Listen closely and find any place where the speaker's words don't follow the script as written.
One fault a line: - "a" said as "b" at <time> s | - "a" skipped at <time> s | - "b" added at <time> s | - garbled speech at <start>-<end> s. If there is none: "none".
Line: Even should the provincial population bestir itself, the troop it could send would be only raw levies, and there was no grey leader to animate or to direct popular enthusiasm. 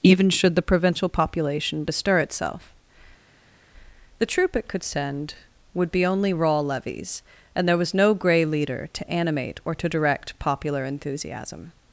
none